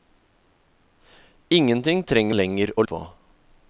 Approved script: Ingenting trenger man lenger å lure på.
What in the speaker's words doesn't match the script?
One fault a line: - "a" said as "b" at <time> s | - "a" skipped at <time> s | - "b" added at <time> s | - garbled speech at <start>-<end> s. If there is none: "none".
- "man" skipped at 2.4 s
- "lure" skipped at 2.8 s